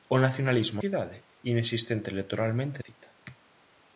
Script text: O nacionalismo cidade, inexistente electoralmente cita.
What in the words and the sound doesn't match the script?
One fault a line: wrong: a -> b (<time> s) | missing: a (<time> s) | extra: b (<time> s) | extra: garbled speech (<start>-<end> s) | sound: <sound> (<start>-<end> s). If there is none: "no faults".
no faults